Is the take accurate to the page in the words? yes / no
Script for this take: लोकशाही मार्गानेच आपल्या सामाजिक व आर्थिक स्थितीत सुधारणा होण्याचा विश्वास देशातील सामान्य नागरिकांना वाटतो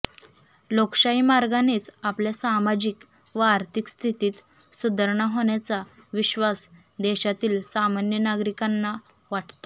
yes